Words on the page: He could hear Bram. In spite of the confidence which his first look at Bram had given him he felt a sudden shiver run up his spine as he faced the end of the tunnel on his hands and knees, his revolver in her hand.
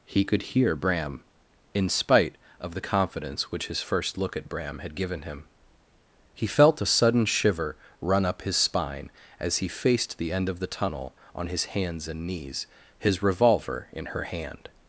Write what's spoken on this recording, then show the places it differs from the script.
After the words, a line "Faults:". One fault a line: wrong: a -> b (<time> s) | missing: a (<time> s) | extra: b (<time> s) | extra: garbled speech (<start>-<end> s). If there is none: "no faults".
He could hear Bram. In spite of the confidence which his first look at Bram had given him he felt a sudden shiver run up his spine as he faced the end of the tunnel on his hands and knees, his revolver in her hand.
Faults:
no faults